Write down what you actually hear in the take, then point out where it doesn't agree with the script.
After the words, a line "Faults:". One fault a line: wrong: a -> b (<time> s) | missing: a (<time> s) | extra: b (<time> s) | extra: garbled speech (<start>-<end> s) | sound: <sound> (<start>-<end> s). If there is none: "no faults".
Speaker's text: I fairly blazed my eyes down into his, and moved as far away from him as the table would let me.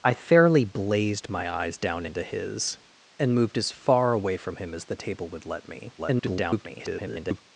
I fairly blazed my eyes down into his, and moved as far away from him as the table would let me. [garbled]
Faults:
extra: garbled speech (6.0-7.4 s)